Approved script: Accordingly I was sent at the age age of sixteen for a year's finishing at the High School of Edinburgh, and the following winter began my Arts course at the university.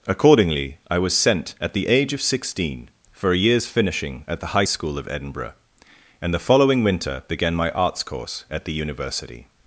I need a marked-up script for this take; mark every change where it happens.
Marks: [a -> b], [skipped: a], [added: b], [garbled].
Accordingly I was sent at the age [skipped: age] of sixteen for a year's finishing at the High School of Edinburgh, and the following winter began my Arts course at the university.